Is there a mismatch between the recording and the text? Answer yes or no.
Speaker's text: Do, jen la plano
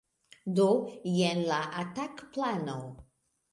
yes